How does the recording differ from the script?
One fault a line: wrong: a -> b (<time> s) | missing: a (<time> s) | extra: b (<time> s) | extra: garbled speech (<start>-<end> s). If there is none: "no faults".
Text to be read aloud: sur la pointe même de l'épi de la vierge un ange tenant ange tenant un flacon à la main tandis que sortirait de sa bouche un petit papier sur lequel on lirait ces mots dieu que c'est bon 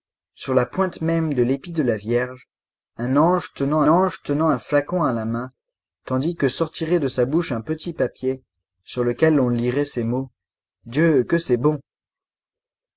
no faults